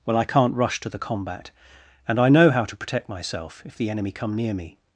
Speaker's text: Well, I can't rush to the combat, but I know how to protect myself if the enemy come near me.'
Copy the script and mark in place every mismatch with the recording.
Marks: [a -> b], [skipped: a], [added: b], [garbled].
Well, I can't rush to the combat, [but -> and] I know how to protect myself if the enemy come near me.'